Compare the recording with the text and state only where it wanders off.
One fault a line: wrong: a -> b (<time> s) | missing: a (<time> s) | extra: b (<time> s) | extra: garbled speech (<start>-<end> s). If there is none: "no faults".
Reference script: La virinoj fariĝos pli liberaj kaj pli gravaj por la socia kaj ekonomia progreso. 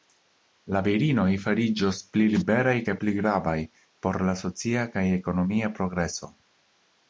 no faults